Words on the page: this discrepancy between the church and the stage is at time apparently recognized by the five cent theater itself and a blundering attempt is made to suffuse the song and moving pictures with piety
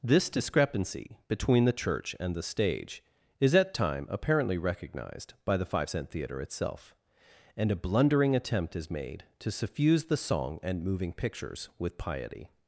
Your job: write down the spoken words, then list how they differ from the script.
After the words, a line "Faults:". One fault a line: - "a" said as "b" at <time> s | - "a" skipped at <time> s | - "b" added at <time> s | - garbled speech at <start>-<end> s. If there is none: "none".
this discrepancy between the church and the stage is at time apparently recognized by the five cent theater itself and a blundering attempt is made to suffuse the song and moving pictures with piety
Faults:
none